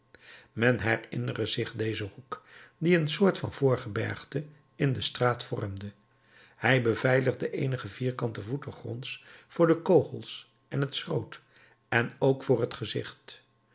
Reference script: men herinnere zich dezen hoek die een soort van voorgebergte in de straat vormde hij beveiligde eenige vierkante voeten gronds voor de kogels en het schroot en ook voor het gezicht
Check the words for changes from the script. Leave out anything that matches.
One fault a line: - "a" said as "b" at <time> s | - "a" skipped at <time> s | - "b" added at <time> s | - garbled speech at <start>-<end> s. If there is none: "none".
none